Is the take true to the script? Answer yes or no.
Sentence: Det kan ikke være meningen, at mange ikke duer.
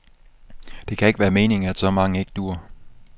no